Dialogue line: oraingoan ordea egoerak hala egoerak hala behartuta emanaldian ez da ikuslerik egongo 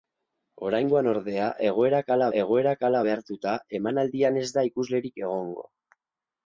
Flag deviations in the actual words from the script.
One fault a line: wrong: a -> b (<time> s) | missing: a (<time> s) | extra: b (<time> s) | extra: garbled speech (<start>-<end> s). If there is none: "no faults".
no faults